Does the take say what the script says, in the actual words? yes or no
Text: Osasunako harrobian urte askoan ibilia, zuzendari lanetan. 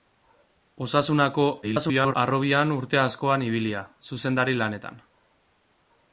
no